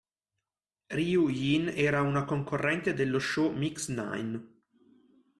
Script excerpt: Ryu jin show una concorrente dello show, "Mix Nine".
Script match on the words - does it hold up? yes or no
no